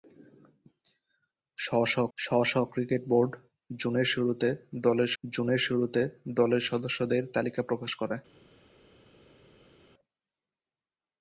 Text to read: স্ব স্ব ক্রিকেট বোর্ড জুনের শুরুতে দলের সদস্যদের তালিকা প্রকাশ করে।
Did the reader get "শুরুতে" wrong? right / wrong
right